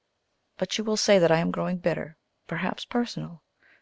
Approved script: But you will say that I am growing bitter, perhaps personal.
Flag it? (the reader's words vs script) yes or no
no